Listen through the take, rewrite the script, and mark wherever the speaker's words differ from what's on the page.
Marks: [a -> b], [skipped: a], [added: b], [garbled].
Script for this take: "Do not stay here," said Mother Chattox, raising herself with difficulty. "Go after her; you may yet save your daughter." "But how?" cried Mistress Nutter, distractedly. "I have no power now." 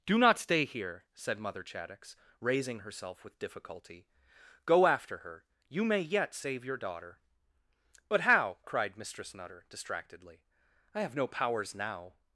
"Do not stay here," said Mother Chattox, raising herself with difficulty. "Go after her; you may yet save your daughter." "But how?" cried Mistress Nutter, distractedly. "I have no [power -> powers] now."